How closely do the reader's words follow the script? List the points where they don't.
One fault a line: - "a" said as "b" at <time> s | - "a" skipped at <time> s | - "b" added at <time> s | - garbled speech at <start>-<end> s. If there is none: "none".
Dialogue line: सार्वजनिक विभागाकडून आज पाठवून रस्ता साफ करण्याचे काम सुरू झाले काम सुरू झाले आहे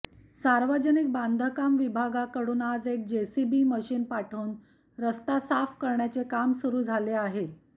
- "बांधकाम" added at 1.1 s
- "एक जेसीबी मशीन" added at 2.9 s
- "काम सुरू झाले" skipped at 7.1 s